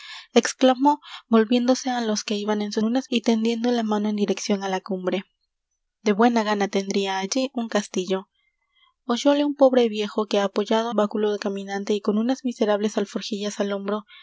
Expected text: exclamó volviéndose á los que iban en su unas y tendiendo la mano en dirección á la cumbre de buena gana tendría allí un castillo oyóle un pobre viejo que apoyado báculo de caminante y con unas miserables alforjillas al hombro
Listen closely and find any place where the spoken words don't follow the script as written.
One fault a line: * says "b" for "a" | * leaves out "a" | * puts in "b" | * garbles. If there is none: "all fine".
all fine